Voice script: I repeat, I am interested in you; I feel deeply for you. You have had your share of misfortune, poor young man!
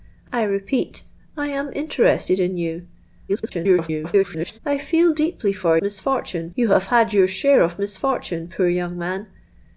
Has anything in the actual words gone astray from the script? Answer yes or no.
yes